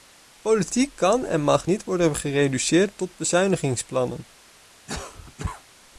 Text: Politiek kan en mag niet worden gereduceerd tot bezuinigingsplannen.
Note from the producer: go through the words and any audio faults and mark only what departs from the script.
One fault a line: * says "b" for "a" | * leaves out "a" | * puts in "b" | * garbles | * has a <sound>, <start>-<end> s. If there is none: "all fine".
* has a cough, 4.9-5.6 s